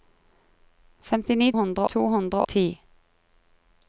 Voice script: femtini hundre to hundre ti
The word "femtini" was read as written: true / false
true